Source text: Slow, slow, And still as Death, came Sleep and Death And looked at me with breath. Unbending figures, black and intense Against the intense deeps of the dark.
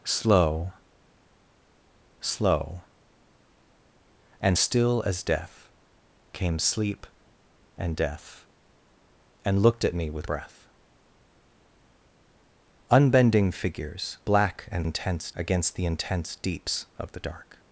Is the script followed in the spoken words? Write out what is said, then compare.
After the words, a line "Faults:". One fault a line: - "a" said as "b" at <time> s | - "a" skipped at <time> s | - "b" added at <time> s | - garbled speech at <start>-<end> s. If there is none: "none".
Slow, slow, And still as Death, came Sleep and Death And looked at me with breath. Unbending figures, black and intense Against the intense deeps of the dark.
Faults:
none